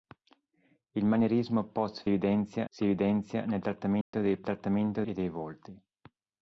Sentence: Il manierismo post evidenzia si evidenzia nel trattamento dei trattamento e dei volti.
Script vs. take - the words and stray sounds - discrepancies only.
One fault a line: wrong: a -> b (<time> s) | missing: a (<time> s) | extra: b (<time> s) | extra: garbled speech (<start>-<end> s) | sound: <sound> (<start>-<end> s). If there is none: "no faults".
sound: dropout (4.0-4.1 s)